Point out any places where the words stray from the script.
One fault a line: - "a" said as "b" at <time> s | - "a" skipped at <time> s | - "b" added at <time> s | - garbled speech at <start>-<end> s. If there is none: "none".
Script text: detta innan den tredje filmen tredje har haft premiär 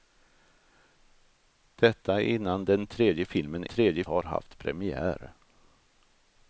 none